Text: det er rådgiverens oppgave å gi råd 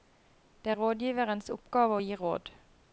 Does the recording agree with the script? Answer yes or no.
yes